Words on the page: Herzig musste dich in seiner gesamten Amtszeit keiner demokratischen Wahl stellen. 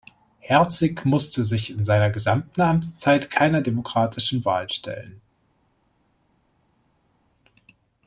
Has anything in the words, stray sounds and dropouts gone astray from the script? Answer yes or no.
yes